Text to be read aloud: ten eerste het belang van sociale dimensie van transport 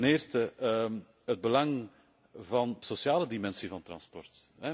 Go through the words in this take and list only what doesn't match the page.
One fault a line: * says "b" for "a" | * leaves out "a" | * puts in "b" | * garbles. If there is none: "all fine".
all fine